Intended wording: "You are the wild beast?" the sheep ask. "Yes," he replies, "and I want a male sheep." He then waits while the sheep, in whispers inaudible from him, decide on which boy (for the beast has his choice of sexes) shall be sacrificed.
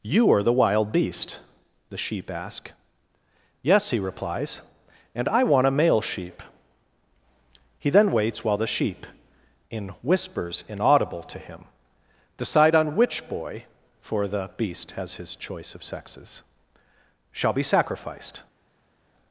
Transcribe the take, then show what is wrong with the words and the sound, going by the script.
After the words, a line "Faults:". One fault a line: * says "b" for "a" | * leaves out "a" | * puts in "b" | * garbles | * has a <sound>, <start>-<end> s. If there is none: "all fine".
"You are the wild beast?" the sheep ask. "Yes," he replies, "and I want a male sheep." He then waits while the sheep, in whispers inaudible to him, decide on which boy (for the beast has his choice of sexes) shall be sacrificed.
Faults:
* says "to" for "from"